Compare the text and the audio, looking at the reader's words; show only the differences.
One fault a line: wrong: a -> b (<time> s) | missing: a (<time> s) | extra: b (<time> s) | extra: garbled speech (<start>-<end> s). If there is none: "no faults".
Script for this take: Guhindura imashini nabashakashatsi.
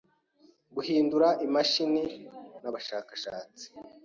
no faults